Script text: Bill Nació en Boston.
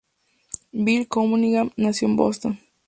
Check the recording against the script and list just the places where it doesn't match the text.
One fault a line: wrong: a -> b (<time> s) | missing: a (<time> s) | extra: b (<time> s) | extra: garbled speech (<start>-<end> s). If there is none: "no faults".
extra: Cunningham (1.1 s)